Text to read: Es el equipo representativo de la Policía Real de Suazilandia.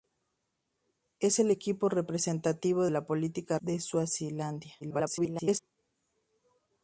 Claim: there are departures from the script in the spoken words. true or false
true